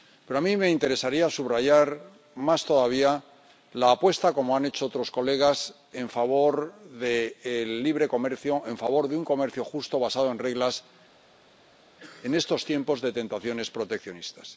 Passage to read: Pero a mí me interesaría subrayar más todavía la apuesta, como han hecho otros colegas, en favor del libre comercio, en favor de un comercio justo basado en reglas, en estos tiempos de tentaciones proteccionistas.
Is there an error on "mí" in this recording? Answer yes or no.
no